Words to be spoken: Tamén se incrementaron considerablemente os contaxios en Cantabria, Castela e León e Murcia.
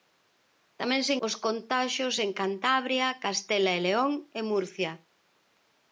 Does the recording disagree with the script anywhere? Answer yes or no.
yes